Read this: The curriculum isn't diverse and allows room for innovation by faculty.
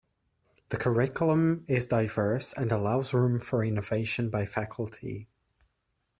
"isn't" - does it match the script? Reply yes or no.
no